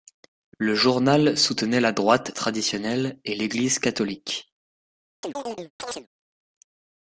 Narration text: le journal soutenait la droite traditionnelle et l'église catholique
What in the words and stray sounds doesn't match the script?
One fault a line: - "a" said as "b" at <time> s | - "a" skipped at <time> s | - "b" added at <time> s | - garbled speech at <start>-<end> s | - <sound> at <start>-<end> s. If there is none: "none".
- chirp at 5.2-6.1 s